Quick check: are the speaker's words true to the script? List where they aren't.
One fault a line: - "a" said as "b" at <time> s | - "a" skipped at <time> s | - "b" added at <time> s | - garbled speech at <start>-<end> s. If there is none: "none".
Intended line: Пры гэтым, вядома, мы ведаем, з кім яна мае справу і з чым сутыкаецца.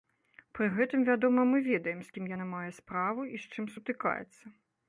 none